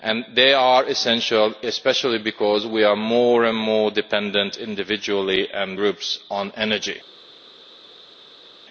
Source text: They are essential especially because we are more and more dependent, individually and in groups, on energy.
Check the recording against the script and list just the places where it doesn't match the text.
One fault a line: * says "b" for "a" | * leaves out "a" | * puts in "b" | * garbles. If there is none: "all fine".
* leaves out "in"